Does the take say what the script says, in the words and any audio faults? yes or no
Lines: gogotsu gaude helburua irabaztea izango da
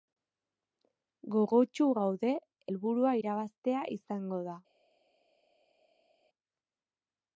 yes